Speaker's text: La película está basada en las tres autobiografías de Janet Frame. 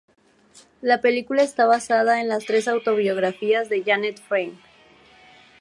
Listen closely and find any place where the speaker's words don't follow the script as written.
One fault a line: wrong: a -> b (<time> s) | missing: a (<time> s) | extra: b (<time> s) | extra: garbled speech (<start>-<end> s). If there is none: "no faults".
no faults